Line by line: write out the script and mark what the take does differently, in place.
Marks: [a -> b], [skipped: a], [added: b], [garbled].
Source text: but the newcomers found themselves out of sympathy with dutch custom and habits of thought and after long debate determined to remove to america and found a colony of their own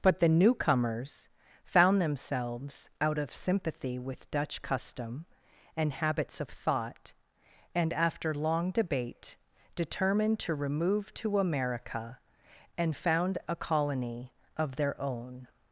but the newcomers found themselves out of sympathy with dutch custom and habits of thought and after long debate determined to remove to america and found a colony of their own